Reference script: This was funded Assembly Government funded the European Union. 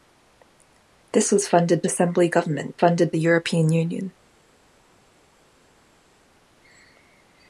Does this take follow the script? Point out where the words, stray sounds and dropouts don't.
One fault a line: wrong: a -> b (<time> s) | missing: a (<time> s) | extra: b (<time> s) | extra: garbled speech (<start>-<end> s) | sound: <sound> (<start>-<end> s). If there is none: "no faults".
no faults